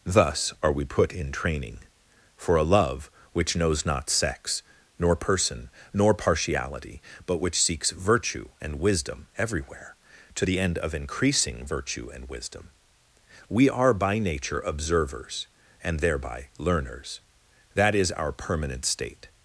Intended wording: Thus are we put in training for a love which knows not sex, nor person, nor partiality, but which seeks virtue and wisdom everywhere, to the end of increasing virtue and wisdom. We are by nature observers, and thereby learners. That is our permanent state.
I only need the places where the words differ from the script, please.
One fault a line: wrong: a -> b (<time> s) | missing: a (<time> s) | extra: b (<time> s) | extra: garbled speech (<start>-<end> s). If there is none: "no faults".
no faults